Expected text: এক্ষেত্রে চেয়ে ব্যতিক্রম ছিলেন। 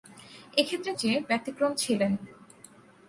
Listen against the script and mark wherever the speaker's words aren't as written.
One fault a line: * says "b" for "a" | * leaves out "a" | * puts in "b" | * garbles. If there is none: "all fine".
all fine